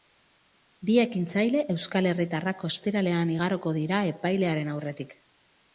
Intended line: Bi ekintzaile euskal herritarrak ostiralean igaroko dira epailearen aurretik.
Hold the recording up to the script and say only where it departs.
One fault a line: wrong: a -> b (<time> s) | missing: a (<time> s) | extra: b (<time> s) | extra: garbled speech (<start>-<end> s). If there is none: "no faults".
no faults